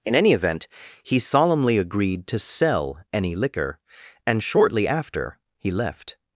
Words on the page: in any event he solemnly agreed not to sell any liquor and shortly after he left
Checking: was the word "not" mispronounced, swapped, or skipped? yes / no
yes